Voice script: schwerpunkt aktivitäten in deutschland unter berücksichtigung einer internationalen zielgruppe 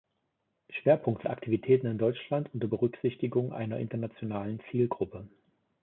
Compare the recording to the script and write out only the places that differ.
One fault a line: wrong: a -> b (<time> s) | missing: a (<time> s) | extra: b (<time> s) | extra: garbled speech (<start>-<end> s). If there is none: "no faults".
no faults